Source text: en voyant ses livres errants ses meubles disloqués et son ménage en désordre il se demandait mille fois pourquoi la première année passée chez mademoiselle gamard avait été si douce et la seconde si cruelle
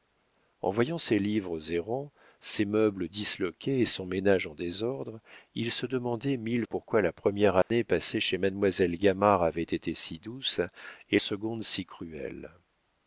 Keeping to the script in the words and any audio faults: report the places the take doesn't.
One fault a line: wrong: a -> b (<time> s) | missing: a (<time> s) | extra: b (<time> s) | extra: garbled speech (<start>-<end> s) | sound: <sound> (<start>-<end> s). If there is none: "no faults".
missing: fois (6.7 s)
sound: dropout (7.6-7.7 s)
missing: la (11.2 s)